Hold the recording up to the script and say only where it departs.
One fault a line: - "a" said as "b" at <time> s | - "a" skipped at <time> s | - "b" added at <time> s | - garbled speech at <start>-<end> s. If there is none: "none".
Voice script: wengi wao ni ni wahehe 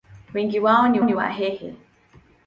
none